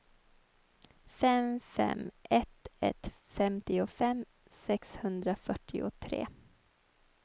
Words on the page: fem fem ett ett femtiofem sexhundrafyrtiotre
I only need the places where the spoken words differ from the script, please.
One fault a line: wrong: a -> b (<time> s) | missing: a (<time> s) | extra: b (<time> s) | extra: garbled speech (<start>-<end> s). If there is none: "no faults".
no faults